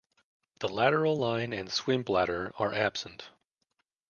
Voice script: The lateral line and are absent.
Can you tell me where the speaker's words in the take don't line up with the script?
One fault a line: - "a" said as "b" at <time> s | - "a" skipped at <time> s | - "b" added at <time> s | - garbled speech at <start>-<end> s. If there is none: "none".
- "swim bladder" added at 1.7 s